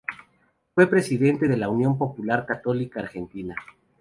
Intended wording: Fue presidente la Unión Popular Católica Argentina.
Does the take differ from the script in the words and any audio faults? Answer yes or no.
yes